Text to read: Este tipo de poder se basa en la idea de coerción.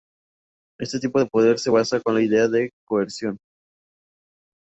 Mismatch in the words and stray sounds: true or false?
false